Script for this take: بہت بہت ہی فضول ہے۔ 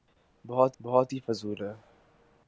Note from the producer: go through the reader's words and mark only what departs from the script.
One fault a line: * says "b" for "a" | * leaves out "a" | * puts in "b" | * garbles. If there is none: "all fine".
all fine